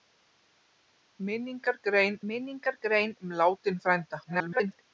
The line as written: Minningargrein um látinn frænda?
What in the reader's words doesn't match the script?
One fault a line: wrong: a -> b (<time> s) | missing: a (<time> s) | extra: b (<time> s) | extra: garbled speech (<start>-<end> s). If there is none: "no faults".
extra: minningargrein (2.3 s)
extra: garbled speech (4.2-4.8 s)